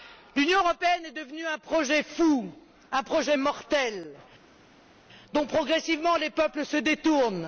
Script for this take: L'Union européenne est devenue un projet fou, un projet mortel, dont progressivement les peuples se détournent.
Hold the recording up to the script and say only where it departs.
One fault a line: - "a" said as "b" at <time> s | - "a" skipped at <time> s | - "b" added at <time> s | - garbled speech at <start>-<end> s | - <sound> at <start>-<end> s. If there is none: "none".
none